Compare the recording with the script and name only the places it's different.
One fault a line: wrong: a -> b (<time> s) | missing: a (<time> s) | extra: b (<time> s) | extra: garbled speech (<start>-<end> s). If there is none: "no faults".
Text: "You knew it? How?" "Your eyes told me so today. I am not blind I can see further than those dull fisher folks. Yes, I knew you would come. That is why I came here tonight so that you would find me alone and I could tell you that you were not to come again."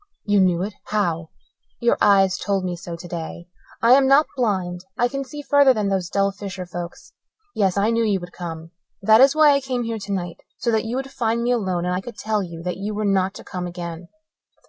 no faults